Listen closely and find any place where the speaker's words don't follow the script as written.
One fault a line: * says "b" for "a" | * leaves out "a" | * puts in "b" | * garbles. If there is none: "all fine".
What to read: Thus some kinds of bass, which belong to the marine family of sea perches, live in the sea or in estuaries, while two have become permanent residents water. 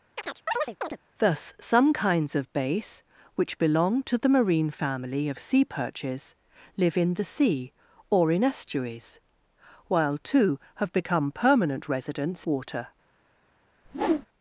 all fine